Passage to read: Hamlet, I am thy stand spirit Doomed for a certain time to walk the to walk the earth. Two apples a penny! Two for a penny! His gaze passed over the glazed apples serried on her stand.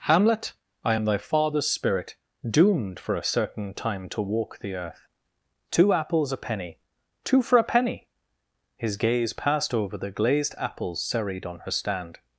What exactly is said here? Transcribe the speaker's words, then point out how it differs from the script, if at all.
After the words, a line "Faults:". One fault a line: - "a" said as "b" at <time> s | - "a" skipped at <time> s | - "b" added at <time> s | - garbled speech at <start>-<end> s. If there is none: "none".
Hamlet, I am thy father's spirit Doomed for a certain time to walk the earth. Two apples a penny! Two for a penny! His gaze passed over the glazed apples serried on her stand.
Faults:
- "stand" said as "father's" at 1.2 s
- "to walk the" skipped at 4.7 s